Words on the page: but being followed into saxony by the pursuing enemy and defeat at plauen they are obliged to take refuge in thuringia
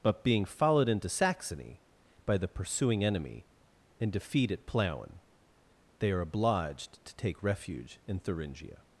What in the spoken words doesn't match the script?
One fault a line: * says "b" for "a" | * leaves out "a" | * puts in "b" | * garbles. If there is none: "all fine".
all fine